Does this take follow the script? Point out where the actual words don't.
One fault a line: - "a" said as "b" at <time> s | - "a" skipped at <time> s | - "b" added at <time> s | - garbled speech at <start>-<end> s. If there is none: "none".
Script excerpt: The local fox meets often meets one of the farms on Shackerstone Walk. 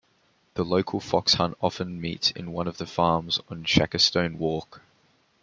- "meets" said as "hunt" at 1.4 s
- "in" added at 2.3 s